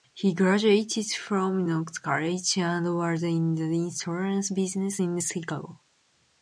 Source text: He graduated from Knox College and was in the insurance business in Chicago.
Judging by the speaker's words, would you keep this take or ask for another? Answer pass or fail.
pass